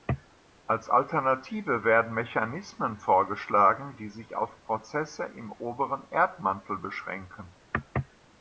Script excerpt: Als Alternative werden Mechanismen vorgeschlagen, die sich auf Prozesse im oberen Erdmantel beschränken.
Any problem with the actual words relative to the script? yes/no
no